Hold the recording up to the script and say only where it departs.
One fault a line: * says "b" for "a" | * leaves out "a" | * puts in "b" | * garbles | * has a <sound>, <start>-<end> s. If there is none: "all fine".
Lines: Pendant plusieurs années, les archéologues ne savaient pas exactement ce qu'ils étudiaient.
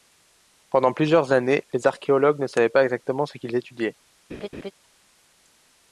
* has a laugh, 4.3-4.7 s